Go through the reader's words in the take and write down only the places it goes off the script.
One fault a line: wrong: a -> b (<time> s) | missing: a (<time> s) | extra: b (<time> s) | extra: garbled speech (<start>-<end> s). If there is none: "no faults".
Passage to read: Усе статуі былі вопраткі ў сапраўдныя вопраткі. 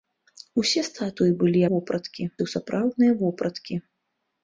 no faults